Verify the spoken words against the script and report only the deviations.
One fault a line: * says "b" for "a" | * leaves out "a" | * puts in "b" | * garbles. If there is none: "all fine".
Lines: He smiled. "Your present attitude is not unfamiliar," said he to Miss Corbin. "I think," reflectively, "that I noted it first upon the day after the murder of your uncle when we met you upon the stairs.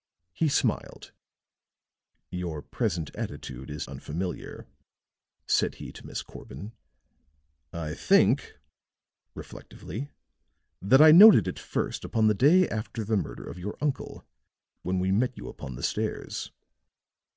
* leaves out "not"